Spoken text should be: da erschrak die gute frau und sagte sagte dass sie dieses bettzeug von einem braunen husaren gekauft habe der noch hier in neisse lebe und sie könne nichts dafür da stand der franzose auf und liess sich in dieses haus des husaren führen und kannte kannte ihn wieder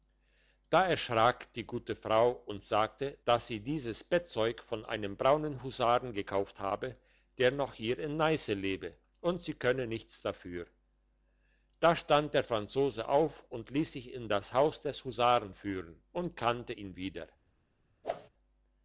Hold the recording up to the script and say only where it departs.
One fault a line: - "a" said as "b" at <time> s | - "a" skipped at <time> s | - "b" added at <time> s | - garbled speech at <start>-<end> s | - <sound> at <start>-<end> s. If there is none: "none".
- "sagte" skipped at 3.2 s
- "dieses" said as "das" at 14.3 s
- "kannte" skipped at 16.7 s
- whoosh at 18.0-18.3 s